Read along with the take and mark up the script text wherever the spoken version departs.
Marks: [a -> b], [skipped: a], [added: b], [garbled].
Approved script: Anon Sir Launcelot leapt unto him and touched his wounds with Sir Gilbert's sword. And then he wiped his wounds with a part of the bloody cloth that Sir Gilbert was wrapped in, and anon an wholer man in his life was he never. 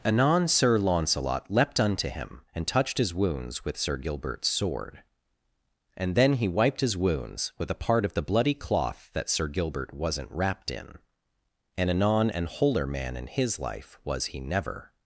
Anon Sir Launcelot leapt unto him and touched his wounds with Sir Gilbert's sword. And then he wiped his wounds with a part of the bloody cloth that Sir Gilbert [was -> wasn't] wrapped in, and anon an wholer man in his life was he never.